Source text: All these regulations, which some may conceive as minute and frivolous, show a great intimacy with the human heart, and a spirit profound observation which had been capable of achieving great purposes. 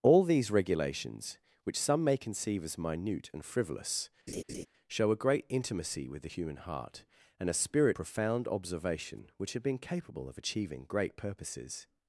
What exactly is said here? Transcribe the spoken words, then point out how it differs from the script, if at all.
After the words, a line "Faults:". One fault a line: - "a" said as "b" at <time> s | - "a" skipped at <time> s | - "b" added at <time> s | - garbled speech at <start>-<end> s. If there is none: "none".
All these regulations, which some may conceive as minute and frivolous, show a great intimacy with the human heart, and a spirit profound observation which had been capable of achieving great purposes.
Faults:
none